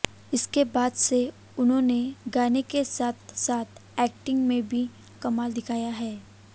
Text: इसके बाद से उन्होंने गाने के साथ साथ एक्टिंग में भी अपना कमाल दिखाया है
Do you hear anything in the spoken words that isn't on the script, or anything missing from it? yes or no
yes